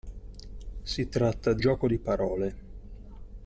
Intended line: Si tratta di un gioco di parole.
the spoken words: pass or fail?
fail